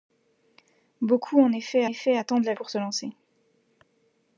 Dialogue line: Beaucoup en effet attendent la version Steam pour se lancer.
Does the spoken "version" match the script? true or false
false